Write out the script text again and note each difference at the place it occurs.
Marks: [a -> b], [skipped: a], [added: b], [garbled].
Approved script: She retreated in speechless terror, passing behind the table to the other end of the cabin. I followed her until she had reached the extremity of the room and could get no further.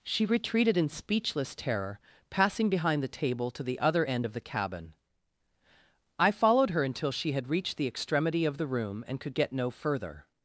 She retreated in speechless terror, passing behind the table to the other end of the cabin. I followed her until she had reached the extremity of the room and could get no further.